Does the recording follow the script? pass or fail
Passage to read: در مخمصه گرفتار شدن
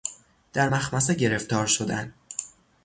pass